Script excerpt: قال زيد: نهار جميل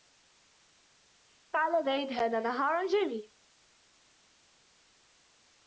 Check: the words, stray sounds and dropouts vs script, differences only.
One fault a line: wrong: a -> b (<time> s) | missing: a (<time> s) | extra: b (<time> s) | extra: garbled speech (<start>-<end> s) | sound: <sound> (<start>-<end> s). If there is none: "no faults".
extra: هذا (2.1 s)